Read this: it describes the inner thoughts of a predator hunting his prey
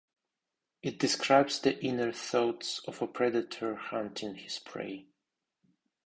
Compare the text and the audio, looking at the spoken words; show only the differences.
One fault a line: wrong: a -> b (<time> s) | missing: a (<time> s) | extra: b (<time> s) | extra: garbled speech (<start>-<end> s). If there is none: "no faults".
no faults